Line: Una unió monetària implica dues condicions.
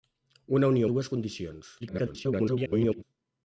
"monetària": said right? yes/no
no